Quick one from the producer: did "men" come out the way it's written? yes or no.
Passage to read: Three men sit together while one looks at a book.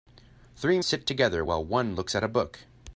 no